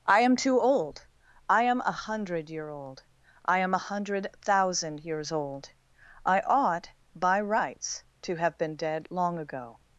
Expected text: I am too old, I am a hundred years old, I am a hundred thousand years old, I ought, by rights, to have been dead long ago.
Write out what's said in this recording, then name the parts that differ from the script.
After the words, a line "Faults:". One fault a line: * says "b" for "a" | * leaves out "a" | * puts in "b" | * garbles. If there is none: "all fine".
I am too old, I am a hundred year old, I am a hundred thousand years old, I ought, by rights, to have been dead long ago.
Faults:
* says "year" for "years"